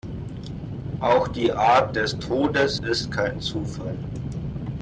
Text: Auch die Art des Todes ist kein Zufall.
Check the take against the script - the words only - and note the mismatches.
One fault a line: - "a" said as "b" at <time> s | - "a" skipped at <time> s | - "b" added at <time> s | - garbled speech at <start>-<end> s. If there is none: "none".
none